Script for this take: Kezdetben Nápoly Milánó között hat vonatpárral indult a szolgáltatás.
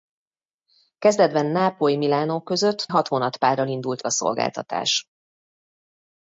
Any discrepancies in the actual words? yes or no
no